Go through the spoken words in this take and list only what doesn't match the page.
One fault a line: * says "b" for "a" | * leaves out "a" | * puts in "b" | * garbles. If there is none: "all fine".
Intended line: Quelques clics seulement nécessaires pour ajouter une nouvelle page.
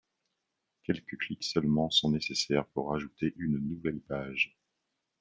* puts in "sont"